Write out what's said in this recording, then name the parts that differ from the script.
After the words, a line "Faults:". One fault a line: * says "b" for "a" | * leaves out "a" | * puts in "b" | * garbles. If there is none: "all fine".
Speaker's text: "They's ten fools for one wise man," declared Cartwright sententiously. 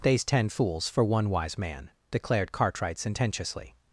"They's ten fools for one wise man," declared Cartwright sententiously.
Faults:
all fine